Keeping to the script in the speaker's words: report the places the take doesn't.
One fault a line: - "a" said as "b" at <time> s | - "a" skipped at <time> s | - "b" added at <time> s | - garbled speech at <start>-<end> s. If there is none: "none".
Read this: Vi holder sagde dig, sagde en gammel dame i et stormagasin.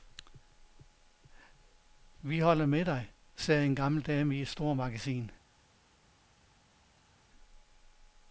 - "sagde" said as "med" at 2.6 s